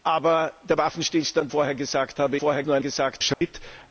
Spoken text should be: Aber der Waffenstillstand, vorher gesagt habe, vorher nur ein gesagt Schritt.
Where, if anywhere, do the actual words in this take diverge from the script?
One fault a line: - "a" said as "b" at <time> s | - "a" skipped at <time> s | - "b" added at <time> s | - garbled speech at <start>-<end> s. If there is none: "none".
none